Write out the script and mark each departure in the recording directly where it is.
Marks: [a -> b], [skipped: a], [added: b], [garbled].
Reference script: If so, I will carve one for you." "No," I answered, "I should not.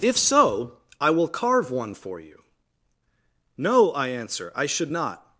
If so, I will carve one for you." "No," I [answered, -> answer] "I should not.